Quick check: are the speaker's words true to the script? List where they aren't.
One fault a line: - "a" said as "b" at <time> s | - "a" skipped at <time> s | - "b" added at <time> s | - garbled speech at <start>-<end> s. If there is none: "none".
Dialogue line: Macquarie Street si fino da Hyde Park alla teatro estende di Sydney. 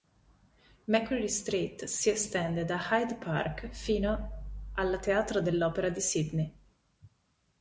- "fino" said as "estende" at 2.1 s
- "fino" added at 3.7 s
- "estende" said as "dell'opera" at 5.4 s